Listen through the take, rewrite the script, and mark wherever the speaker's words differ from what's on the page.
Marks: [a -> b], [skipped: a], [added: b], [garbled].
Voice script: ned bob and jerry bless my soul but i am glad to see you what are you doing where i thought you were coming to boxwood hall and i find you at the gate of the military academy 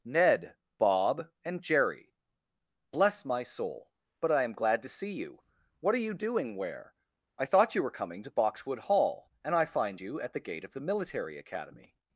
ned bob and jerry bless my soul but i am glad to see you what are you doing where i thought you were coming to boxwood hall and i find you at the gate of the military academy